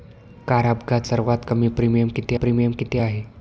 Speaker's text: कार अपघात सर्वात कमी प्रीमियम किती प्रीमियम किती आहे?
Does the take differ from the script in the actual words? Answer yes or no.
no